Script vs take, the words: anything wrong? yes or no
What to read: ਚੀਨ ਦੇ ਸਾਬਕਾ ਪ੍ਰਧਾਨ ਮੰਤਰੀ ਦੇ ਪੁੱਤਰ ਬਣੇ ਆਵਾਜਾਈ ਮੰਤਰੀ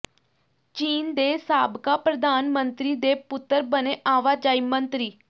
no